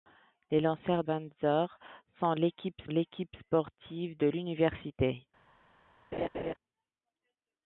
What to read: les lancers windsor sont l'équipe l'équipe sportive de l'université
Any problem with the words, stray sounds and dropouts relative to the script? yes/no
yes